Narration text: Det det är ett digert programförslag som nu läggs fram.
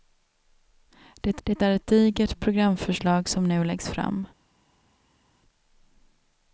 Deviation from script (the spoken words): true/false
false